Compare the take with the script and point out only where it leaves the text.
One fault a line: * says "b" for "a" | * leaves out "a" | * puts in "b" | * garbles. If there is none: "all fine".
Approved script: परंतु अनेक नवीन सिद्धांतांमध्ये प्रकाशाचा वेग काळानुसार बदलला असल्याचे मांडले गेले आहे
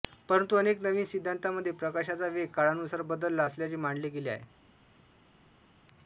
all fine